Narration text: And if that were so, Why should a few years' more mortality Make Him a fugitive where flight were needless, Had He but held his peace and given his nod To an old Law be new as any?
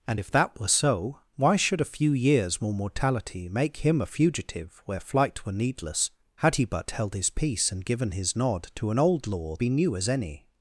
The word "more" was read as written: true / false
true